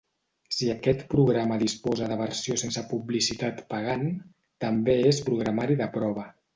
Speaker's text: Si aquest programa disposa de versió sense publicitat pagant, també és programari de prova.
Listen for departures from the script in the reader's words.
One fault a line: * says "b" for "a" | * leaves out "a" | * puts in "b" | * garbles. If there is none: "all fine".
all fine